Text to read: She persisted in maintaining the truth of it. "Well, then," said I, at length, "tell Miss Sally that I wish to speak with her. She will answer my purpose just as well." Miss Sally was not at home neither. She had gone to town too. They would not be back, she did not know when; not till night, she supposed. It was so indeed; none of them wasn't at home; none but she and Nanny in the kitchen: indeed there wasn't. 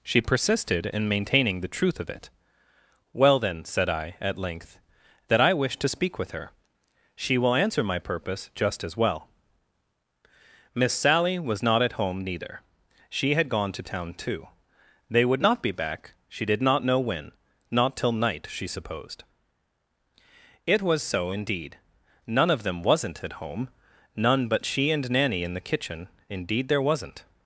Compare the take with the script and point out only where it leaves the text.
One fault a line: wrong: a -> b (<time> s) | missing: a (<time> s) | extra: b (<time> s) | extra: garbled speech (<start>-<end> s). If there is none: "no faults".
missing: tell Miss Sally (4.8 s)